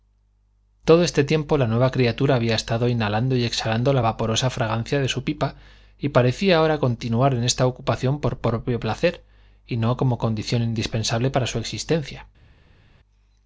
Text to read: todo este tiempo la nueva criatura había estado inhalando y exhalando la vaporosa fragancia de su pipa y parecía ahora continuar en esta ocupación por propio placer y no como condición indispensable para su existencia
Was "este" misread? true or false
false